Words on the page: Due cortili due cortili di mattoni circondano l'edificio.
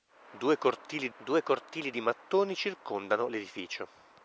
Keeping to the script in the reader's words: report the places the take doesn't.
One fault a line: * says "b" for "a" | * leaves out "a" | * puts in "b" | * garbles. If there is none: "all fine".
all fine